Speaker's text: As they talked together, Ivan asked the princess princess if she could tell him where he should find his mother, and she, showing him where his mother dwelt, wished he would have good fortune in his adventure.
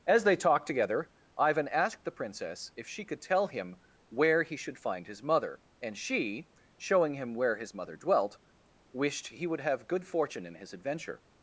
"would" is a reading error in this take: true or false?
false